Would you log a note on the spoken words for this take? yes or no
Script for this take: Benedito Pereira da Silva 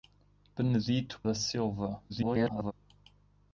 yes